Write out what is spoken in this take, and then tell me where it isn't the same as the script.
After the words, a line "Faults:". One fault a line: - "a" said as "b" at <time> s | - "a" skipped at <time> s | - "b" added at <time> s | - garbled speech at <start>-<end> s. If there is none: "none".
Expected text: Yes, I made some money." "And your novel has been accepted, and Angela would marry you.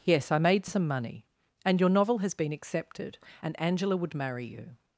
Yes, I made some money." "And your novel has been accepted, and Angela would marry you.
Faults:
none